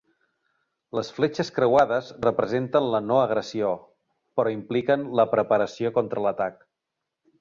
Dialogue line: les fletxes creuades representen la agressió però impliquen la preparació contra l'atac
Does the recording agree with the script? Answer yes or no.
no